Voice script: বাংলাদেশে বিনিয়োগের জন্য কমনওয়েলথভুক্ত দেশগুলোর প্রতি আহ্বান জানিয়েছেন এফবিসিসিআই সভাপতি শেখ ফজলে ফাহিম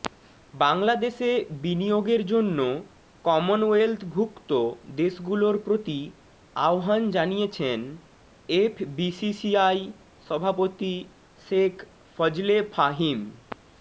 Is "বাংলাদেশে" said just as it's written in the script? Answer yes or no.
yes